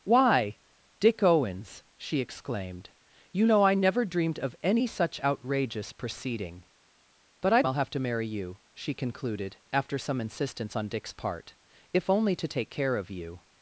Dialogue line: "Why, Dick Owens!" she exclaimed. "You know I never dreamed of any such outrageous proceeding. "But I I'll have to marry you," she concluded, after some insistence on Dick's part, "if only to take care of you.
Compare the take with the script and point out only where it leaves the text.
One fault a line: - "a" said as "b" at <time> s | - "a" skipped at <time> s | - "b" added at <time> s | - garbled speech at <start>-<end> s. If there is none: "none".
none